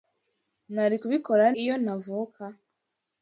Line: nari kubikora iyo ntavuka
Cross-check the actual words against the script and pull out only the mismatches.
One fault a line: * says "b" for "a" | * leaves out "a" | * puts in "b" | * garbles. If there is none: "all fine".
all fine